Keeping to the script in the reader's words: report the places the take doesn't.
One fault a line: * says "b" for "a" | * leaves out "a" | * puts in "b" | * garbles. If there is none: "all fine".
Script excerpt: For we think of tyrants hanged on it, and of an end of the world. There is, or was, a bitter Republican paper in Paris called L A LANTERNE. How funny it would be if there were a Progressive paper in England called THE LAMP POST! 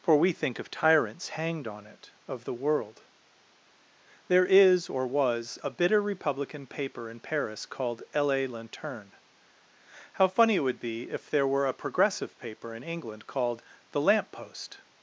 * leaves out "and of an end"